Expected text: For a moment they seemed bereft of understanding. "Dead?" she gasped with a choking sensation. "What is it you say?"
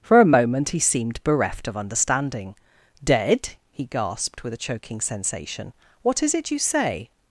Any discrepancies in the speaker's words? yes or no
yes